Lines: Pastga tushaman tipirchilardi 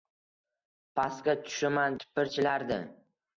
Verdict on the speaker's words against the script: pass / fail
pass